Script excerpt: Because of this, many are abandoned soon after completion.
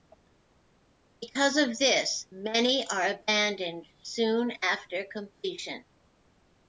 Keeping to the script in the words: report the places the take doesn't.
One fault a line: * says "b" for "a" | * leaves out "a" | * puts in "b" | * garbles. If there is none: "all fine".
all fine